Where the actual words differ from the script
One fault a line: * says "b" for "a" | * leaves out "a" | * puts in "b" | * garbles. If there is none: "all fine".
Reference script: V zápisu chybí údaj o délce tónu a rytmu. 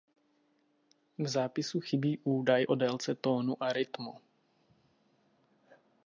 all fine